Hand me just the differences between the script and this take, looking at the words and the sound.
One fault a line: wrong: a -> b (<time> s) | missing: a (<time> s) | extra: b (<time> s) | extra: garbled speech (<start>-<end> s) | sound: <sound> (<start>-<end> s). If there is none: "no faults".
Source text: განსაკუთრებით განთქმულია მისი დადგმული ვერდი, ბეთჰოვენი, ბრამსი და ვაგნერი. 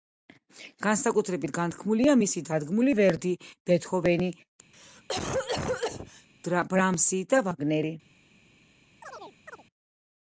sound: cough (4.7-6.3 s)
sound: chirp (9.0-9.6 s)